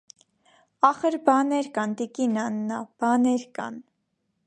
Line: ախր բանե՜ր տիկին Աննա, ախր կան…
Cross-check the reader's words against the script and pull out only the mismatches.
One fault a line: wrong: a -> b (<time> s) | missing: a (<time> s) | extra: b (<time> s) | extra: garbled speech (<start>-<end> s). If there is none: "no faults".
extra: կան (1.8 s)
wrong: ախր -> բանե՜ր (3.0 s)